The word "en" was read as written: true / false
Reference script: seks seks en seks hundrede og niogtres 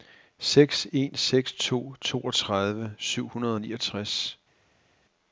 false